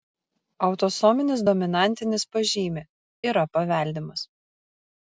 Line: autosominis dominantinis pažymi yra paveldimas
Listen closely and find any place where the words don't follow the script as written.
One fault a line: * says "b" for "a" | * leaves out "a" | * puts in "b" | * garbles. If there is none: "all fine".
all fine